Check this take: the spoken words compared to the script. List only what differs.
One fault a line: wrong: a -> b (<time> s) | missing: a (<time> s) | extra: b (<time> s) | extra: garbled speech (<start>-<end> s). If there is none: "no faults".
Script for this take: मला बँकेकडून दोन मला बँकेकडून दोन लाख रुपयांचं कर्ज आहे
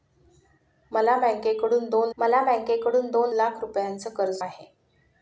no faults